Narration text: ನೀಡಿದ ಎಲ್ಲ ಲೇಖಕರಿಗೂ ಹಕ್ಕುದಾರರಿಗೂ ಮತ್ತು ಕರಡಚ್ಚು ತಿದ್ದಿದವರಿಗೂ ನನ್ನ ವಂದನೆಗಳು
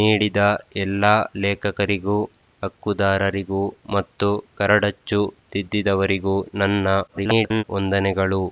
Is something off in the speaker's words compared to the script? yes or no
yes